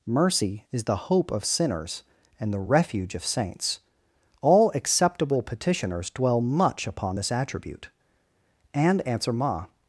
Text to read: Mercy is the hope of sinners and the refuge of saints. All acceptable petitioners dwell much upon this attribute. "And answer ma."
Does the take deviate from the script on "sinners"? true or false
false